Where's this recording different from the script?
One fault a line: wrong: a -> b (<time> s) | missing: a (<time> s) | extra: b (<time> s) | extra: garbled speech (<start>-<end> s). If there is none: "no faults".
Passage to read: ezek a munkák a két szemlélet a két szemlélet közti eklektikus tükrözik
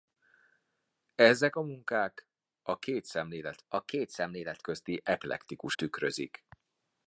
no faults